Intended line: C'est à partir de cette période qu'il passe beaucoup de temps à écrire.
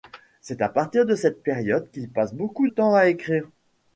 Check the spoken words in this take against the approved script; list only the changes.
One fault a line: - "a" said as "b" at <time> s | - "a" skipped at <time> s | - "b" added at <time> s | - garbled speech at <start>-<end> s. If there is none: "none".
- "de" skipped at 2.7 s